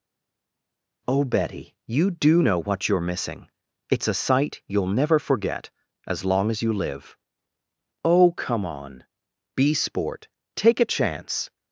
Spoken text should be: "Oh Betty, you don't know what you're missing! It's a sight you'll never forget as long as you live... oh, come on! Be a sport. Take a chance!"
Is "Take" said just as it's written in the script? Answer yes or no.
yes